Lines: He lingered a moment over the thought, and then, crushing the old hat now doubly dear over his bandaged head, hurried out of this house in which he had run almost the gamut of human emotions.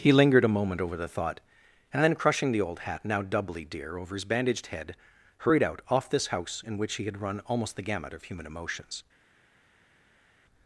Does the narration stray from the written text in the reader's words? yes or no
yes